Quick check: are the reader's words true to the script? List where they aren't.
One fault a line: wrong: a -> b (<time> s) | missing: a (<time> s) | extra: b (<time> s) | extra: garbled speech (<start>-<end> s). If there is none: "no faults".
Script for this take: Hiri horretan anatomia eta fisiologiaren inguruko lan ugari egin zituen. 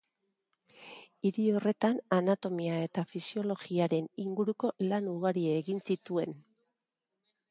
no faults